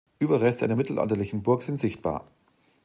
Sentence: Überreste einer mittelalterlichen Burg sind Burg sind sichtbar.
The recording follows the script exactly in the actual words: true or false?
false